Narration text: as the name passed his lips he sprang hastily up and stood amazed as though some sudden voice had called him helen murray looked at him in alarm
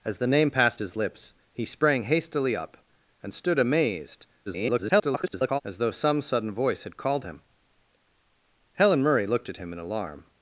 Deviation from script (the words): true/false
true